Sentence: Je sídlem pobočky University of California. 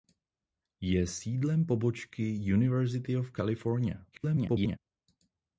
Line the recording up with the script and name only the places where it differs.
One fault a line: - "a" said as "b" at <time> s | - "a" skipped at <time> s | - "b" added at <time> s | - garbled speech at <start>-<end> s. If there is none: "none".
- garbled speech at 4.1-4.8 s